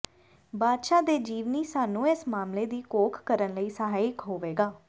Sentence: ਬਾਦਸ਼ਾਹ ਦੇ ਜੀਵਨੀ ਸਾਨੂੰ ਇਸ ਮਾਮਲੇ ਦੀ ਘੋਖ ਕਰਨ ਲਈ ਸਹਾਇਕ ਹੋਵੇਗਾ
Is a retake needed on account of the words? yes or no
no